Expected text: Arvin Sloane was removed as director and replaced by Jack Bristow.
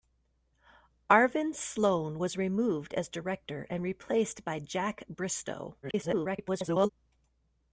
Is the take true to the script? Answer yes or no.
no